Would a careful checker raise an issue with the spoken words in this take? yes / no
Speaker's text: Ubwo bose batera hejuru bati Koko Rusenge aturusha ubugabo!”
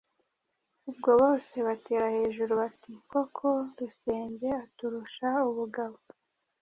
no